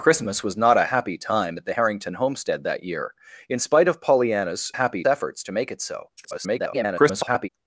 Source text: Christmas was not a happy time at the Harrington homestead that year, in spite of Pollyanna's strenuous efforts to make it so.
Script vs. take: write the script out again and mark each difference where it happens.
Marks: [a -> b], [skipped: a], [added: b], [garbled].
Christmas was not a happy time at the Harrington homestead that year, in spite of Pollyanna's [strenuous -> happy] efforts to make it so. [garbled]